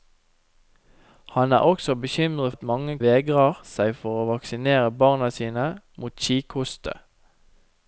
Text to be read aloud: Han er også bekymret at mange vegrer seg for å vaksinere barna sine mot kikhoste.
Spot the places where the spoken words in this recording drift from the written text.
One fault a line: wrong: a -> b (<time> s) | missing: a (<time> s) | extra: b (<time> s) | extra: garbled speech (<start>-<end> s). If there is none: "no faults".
no faults